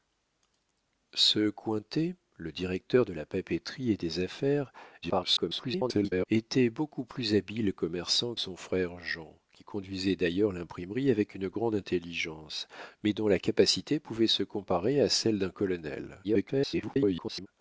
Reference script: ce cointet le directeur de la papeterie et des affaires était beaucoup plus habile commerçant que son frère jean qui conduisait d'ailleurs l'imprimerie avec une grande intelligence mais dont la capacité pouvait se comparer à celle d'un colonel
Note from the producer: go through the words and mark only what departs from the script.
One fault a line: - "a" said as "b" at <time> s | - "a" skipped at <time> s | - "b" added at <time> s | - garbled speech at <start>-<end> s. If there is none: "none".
- garbled speech at 5.0-6.3 s
- "que" skipped at 8.3 s
- garbled speech at 16.2-17.5 s